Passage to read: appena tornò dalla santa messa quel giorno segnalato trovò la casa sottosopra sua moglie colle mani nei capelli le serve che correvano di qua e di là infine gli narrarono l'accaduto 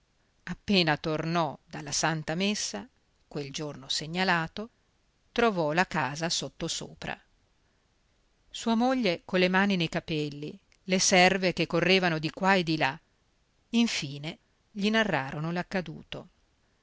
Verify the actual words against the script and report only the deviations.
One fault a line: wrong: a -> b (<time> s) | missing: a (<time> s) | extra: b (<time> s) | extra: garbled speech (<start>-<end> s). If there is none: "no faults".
no faults